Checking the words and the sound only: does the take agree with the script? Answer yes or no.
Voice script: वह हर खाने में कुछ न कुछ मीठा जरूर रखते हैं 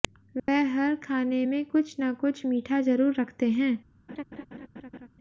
no